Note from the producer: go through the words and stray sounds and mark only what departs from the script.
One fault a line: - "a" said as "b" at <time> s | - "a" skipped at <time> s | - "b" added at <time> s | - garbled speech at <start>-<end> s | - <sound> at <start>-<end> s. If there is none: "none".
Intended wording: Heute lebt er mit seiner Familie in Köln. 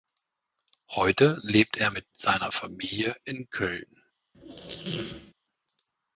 - squeak at 4.3-5.3 s